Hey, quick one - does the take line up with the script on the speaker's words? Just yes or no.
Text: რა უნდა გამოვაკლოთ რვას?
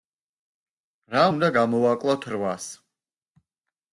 yes